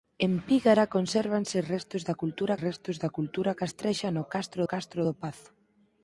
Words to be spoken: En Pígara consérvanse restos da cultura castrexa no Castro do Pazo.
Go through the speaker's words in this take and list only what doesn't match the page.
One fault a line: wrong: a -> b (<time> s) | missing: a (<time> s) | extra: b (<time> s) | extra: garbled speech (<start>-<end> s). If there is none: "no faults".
extra: restos da cultura (2.7 s)
extra: Castro (4.7 s)